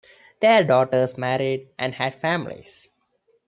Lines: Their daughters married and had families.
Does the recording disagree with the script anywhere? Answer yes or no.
no